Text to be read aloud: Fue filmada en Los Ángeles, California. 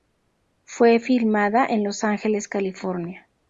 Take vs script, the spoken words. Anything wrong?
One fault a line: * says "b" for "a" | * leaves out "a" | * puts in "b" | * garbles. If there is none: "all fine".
all fine